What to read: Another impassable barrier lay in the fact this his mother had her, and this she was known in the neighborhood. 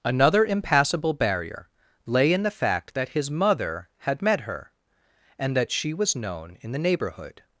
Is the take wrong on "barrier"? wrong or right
right